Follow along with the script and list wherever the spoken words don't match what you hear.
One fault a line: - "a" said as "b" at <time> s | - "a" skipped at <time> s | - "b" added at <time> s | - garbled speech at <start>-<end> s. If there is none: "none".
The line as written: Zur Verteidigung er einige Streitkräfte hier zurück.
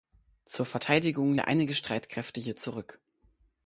none